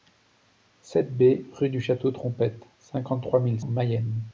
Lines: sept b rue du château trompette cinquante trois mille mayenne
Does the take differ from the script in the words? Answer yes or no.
no